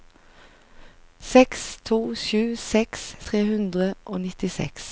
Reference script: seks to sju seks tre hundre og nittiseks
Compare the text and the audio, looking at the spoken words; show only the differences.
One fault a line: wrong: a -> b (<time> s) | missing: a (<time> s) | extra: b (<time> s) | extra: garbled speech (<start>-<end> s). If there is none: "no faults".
no faults